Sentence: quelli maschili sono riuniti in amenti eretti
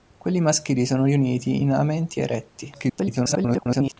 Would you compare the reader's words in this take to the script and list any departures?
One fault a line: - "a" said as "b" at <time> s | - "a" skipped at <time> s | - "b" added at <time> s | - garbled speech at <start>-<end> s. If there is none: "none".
- garbled speech at 2.7-4.0 s